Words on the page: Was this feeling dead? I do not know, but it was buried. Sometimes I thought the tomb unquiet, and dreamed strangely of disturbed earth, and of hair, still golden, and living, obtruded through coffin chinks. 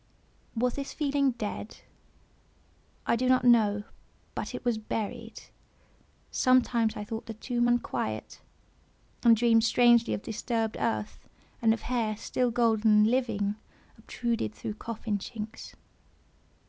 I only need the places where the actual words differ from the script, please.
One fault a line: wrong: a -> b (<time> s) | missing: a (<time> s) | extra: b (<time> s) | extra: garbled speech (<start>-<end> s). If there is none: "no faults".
no faults